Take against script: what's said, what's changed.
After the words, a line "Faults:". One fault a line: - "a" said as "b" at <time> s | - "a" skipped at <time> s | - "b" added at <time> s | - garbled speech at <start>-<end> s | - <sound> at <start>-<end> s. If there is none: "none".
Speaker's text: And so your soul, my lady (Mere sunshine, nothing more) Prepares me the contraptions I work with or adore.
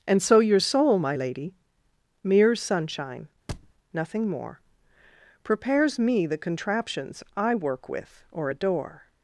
And so your soul, my lady (Mere sunshine, nothing more) Prepares me the contraptions I work with or adore.
Faults:
- thud at 3.5-3.7 s